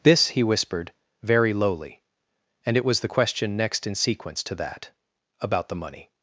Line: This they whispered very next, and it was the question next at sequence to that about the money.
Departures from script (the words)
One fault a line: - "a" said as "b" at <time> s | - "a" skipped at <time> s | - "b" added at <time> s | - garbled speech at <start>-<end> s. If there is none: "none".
- "they" said as "he" at 0.3 s
- "next" said as "lowly" at 1.5 s
- "at" said as "in" at 3.8 s